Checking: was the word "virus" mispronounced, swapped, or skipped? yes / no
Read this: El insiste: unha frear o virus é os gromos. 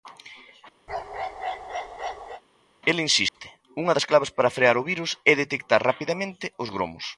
no